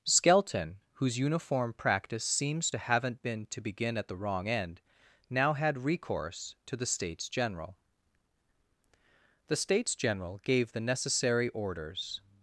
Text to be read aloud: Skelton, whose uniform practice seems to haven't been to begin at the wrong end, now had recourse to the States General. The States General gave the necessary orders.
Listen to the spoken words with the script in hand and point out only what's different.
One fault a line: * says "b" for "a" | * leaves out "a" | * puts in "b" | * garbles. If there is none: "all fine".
all fine